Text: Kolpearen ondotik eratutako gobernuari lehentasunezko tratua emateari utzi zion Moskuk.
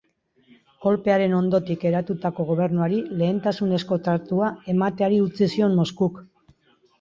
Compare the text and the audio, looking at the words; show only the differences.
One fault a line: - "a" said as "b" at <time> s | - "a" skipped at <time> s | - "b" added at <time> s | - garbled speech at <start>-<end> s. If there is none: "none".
none